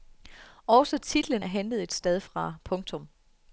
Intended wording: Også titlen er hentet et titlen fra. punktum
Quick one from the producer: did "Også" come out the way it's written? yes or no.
yes